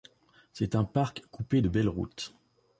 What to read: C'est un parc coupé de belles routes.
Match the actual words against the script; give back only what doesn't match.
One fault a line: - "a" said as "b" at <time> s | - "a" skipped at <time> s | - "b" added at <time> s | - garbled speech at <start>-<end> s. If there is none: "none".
none